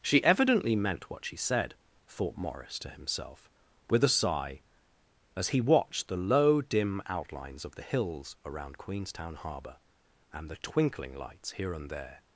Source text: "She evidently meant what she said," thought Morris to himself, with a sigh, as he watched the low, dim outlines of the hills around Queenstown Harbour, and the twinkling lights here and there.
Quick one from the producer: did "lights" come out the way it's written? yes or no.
yes